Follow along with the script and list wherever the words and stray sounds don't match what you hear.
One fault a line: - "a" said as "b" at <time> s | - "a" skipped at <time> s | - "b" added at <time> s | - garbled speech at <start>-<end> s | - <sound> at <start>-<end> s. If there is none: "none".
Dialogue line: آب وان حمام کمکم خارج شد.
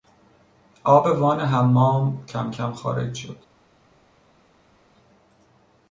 none